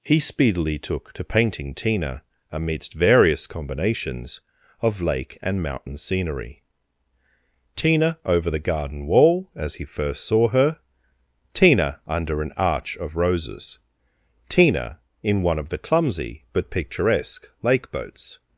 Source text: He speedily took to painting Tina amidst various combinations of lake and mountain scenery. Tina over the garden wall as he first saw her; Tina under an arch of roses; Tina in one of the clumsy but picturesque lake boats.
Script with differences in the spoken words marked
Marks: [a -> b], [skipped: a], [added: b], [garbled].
He speedily took to painting Tina amidst various combinations of lake and mountain scenery. Tina over the garden wall as he first saw her; Tina under an arch of roses; Tina in one of the clumsy but picturesque lake boats.